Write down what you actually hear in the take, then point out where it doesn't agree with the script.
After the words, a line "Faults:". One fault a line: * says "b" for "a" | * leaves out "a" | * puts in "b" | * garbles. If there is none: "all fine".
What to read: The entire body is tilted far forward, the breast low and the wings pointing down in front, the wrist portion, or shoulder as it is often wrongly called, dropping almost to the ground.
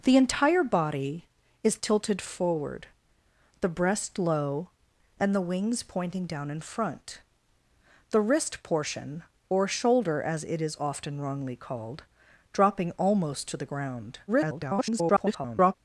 The entire body is tilted forward, the breast low and the wings pointing down in front, the wrist portion, or shoulder as it is often wrongly called, dropping almost to the ground. [garbled]
Faults:
* leaves out "far"
* garbles